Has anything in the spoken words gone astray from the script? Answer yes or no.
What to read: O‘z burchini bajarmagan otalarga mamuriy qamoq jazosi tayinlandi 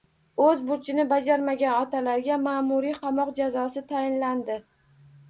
no